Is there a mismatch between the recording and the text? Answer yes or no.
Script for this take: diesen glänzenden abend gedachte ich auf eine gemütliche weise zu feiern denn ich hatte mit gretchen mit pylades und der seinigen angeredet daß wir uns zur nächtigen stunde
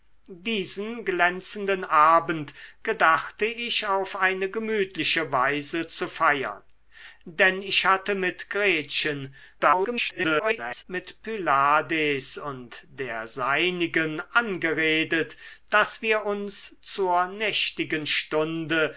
yes